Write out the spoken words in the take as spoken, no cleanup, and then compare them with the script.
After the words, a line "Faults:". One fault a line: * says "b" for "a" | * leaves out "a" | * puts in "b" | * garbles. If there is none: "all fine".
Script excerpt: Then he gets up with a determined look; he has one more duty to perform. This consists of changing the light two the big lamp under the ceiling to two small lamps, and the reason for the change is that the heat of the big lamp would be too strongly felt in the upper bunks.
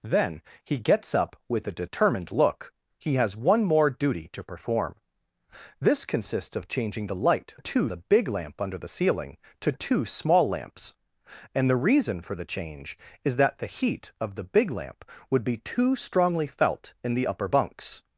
Then he gets up with a determined look; he has one more duty to perform. This consists of changing the light two the big lamp under the ceiling to two small lamps, and the reason for the change is that the heat of the big lamp would be too strongly felt in the upper bunks.
Faults:
all fine